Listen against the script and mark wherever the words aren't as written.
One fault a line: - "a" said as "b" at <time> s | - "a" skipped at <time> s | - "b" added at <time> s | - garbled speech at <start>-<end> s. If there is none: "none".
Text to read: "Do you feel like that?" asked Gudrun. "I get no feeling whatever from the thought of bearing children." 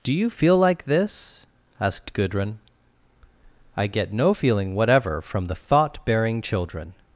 - "that" said as "this" at 0.8 s
- "of" skipped at 6.0 s